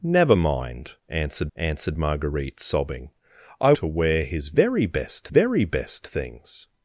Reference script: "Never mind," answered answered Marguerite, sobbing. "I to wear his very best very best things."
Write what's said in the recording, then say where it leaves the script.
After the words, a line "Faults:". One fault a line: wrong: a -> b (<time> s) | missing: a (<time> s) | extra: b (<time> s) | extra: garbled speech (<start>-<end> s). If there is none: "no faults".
"Never mind," answered answered Marguerite, sobbing. "I to wear his very best very best things."
Faults:
no faults